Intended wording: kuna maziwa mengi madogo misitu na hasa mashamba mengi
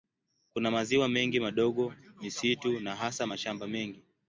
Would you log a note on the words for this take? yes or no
no